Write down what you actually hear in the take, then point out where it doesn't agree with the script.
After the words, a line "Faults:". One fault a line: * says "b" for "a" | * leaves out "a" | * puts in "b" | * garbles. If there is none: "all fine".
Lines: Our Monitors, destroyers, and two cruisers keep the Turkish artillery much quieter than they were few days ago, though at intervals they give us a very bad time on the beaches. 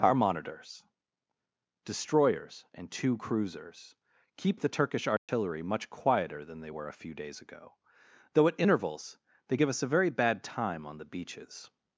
Our Monitors, destroyers, and two cruisers keep the Turkish artillery much quieter than they were a few days ago, though at intervals they give us a very bad time on the beaches.
Faults:
* puts in "a"